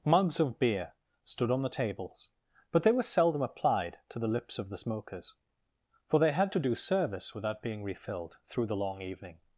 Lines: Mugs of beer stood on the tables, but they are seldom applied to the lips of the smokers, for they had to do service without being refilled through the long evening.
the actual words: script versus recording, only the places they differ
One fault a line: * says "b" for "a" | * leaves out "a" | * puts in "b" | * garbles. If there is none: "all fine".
* says "were" for "are"